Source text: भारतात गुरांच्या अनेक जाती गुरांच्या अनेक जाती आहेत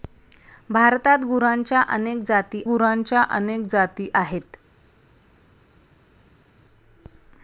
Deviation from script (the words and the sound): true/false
false